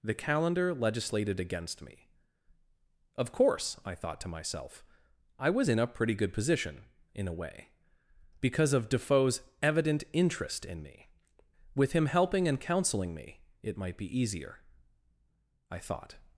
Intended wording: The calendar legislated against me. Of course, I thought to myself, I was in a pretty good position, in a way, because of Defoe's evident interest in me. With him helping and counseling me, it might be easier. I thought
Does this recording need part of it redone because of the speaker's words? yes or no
no